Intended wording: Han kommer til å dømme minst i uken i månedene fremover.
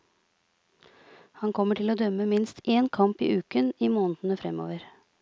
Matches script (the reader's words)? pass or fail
fail